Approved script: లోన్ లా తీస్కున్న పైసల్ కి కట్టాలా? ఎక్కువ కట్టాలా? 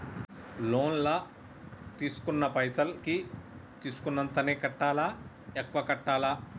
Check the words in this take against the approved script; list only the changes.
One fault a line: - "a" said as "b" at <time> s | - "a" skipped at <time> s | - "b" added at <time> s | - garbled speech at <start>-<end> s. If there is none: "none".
- "తీస్కున్నంతనే" added at 3.8 s